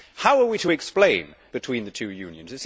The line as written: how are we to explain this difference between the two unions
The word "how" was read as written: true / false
true